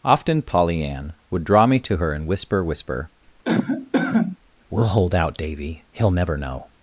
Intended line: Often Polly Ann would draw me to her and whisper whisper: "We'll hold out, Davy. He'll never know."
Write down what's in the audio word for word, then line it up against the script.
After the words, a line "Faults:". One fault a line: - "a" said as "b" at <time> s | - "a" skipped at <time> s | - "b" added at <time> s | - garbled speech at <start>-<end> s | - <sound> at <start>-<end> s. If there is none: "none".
Often Polly Ann would draw me to her and whisper whisper: "We'll hold out, Davy. He'll never know."
Faults:
- cough at 3.4-4.4 s